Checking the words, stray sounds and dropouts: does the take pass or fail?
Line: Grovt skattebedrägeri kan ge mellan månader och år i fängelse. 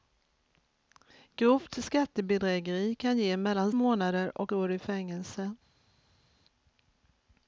pass